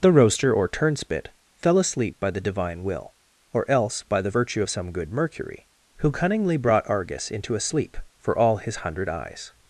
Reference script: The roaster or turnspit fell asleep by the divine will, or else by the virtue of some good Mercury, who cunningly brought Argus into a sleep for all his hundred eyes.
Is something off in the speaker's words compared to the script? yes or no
no